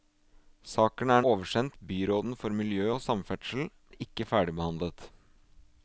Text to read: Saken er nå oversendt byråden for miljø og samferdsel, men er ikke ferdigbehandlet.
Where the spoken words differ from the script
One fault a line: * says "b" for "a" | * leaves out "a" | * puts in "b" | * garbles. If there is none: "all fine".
* leaves out "nå"
* leaves out "men"